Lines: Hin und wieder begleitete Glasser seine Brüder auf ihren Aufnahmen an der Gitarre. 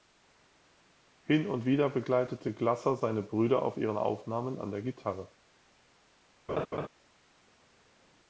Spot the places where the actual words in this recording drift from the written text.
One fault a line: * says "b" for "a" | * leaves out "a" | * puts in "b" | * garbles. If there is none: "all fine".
all fine